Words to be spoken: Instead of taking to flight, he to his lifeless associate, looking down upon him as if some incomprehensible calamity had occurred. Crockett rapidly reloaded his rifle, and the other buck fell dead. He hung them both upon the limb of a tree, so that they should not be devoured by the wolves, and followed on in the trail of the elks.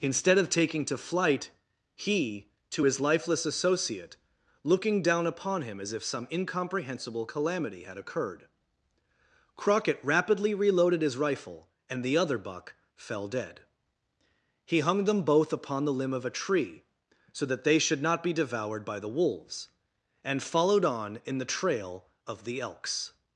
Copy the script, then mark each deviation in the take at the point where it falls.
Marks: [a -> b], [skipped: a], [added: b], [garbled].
Instead of taking to flight, he to his lifeless associate, looking down upon him as if some incomprehensible calamity had occurred. Crockett rapidly reloaded his rifle, and the other buck fell dead. He hung them both upon the limb of a tree, so that they should not be devoured by the wolves, and followed on in the trail of the elks.